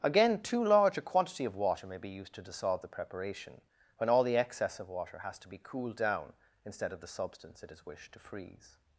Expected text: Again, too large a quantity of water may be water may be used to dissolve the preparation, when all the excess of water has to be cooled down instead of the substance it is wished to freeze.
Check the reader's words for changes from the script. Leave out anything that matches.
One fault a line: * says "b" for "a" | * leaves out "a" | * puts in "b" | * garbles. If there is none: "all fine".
* leaves out "water may be"